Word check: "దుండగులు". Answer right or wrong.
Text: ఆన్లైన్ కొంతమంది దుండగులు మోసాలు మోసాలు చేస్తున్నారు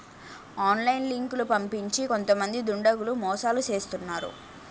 right